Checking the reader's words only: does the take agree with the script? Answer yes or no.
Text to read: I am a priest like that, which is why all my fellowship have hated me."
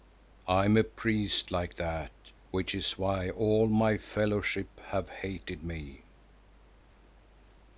yes